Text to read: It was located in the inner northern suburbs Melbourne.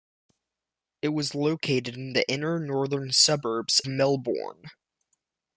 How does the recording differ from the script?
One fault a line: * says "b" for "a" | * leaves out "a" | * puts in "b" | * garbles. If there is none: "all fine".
all fine